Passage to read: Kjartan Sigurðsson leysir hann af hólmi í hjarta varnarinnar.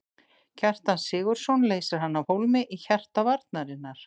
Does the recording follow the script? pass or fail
pass